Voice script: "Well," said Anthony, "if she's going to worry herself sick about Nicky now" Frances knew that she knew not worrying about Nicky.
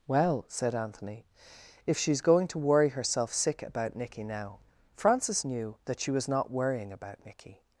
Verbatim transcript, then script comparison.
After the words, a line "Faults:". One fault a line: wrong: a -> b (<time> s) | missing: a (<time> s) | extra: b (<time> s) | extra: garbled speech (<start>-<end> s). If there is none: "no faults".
"Well," said Anthony, "if she's going to worry herself sick about Nicky now" Frances knew that she was not worrying about Nicky.
Faults:
wrong: knew -> was (6.1 s)